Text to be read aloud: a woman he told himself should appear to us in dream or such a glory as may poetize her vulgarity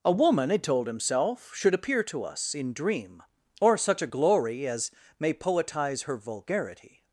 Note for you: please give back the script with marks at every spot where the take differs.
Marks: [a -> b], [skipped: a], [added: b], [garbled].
a woman he told himself should appear to us in dream or such a glory as may poetize her vulgarity